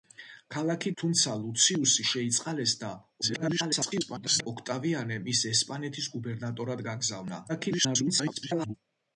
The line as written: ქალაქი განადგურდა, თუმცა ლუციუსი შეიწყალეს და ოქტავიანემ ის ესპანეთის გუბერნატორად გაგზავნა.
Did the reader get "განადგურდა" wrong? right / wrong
wrong